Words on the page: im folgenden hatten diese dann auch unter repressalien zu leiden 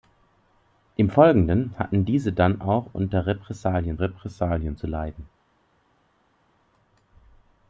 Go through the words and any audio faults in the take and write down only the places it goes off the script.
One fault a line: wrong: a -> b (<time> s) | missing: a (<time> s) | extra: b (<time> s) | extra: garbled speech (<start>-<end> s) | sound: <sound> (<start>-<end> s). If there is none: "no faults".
extra: repressalien (4.0 s)